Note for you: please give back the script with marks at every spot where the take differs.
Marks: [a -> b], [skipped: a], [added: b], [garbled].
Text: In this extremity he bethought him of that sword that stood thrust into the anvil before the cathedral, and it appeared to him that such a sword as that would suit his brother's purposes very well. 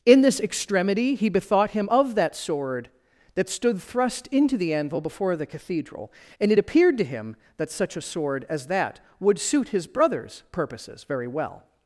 In this extremity he bethought him of that sword that stood thrust into the anvil before the cathedral, and it appeared to him that such a sword as that would suit his brother's purposes very well.